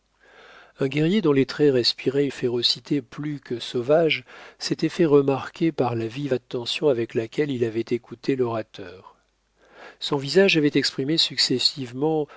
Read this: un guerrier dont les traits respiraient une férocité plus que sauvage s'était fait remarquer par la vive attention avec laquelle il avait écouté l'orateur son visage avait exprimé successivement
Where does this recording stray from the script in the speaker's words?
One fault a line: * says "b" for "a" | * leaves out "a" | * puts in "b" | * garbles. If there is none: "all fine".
* leaves out "une"